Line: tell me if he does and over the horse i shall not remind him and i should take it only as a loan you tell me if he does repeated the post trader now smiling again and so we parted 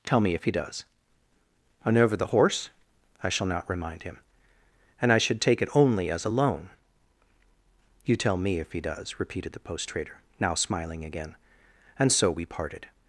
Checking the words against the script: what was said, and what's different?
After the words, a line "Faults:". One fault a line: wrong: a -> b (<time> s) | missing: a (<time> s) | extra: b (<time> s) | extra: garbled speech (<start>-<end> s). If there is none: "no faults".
tell me if he does and over the horse i shall not remind him and i should take it only as a loan you tell me if he does repeated the post trader now smiling again and so we parted
Faults:
no faults